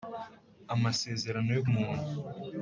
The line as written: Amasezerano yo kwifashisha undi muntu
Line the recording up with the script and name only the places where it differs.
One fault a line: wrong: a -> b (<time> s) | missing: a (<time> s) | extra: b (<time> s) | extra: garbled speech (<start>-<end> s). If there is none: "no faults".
missing: kwifashisha undi (1.6 s)